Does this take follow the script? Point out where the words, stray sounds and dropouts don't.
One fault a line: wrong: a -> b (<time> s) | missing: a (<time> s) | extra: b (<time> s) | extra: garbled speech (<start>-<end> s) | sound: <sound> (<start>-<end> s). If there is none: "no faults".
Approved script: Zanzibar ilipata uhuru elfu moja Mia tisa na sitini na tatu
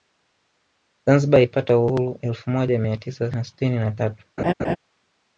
sound: laugh (4.4-4.8 s)